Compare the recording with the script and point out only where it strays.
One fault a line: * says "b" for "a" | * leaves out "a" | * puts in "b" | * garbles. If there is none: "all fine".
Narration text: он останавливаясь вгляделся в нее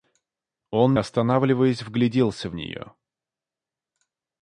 all fine